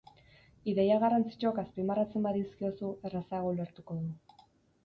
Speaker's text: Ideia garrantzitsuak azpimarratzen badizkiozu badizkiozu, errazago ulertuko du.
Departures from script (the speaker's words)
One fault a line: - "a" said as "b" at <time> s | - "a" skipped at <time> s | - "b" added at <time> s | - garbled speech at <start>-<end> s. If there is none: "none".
- "badizkiozu" skipped at 2.9 s